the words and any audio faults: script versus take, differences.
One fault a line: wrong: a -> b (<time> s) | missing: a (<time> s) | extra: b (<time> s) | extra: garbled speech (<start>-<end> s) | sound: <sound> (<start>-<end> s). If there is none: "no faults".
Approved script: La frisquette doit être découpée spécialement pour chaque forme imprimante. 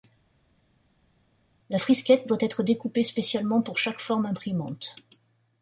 no faults